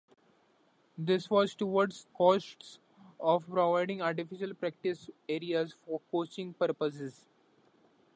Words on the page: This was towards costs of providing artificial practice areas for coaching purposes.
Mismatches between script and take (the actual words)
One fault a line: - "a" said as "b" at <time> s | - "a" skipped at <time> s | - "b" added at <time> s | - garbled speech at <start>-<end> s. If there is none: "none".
none